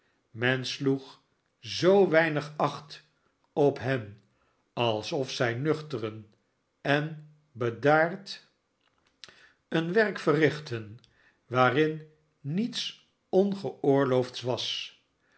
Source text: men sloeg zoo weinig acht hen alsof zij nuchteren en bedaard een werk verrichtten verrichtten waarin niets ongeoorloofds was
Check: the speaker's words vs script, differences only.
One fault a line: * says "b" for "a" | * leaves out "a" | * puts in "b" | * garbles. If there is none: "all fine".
* puts in "op"
* leaves out "verrichtten"